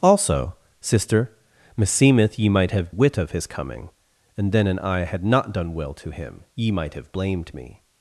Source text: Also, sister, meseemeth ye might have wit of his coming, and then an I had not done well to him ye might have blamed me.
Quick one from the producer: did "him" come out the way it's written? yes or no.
yes